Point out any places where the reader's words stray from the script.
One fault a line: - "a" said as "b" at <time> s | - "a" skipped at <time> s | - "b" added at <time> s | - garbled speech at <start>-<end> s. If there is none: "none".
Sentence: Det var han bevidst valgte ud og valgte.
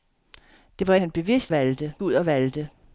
none